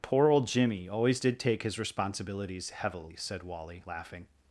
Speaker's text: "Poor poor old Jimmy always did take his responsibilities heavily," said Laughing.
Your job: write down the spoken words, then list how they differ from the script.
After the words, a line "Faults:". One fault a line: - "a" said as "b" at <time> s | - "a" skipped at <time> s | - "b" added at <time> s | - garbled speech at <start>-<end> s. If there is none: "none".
"Poor old Jimmy always did take his responsibilities heavily," said Wally, laughing.
Faults:
- "poor" skipped at 0.3 s
- "Wally" added at 3.4 s